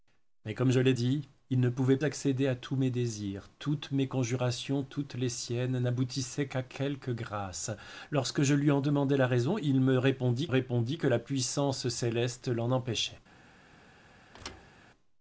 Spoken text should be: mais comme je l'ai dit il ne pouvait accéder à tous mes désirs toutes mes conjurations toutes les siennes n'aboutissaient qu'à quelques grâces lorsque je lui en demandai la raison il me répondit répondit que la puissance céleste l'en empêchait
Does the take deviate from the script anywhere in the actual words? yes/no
no